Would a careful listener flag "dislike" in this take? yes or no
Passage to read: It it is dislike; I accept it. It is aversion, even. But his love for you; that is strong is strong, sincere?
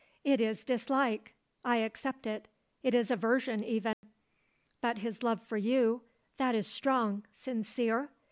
no